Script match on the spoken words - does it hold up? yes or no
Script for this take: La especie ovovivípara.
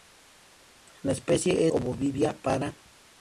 yes